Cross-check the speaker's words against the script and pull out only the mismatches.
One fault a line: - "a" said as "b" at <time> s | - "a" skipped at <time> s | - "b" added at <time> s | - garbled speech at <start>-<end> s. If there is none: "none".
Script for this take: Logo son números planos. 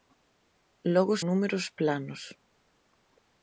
- "son" skipped at 1.1 s